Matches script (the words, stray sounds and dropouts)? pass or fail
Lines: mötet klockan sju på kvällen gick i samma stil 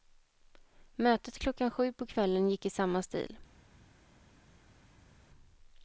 pass